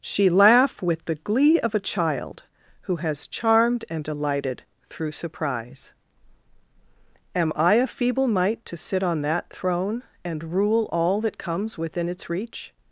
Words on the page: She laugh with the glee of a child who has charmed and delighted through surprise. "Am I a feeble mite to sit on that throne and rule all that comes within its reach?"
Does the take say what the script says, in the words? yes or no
yes